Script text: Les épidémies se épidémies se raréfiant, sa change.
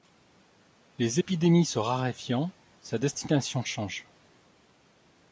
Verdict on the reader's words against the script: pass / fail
fail